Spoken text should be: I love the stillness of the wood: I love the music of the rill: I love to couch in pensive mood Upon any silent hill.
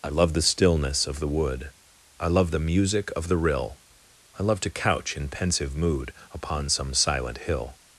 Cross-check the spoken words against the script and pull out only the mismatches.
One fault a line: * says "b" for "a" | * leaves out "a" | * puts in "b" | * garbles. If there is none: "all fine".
* says "some" for "any"